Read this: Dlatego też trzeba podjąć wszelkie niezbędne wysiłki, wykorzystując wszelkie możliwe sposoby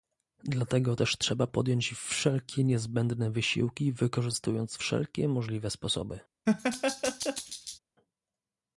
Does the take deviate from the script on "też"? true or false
false